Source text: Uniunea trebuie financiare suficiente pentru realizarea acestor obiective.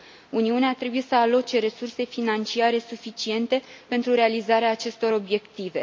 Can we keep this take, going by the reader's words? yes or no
no